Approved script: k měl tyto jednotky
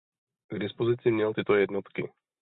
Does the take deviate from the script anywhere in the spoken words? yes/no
yes